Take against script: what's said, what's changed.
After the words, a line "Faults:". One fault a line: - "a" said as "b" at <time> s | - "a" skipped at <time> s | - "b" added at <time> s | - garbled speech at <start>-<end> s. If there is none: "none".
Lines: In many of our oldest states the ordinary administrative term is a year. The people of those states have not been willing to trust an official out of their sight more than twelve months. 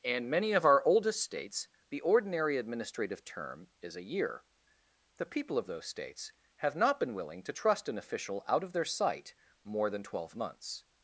In many of our oldest states the ordinary administrative term is a year. The people of those states have not been willing to trust an official out of their sight more than twelve months.
Faults:
none